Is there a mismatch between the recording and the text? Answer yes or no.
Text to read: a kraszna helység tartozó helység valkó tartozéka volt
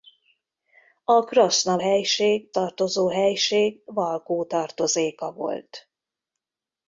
no